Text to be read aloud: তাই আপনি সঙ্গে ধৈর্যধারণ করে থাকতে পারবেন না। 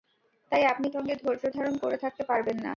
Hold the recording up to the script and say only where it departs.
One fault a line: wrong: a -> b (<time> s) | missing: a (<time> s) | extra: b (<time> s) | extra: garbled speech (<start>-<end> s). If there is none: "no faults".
no faults